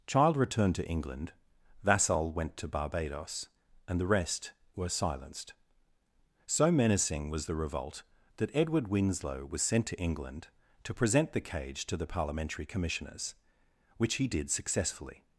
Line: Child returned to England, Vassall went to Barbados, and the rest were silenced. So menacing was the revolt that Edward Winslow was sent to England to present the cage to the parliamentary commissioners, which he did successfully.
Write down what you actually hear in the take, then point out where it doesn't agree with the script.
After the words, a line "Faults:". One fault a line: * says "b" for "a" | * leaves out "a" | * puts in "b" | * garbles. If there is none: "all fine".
Child returned to England, Vassall went to Barbados, and the rest were silenced. So menacing was the revolt that Edward Winslow was sent to England to present the cage to the parliamentary commissioners, which he did successfully.
Faults:
all fine